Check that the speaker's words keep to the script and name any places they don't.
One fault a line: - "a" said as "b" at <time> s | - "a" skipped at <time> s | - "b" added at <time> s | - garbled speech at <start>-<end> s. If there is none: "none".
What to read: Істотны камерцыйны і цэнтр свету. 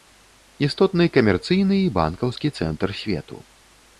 - "банкаўскі" added at 2.0 s